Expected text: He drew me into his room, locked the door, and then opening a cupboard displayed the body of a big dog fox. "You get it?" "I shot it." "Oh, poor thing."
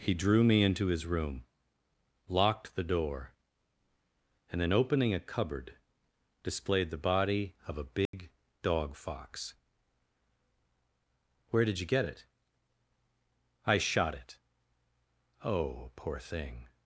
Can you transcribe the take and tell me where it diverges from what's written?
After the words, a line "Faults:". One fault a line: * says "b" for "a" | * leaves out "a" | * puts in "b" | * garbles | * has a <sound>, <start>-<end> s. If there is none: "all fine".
He drew me into his room, locked the door, and then opening a cupboard displayed the body of a big dog fox. "Where did you get it?" "I shot it." "Oh, poor thing."
Faults:
* has a dropout, 8.1-8.1 s
* puts in "Where did"